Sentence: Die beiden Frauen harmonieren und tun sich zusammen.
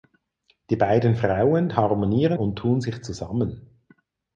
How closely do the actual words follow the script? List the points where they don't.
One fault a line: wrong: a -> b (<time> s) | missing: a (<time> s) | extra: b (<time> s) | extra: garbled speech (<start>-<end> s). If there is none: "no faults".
no faults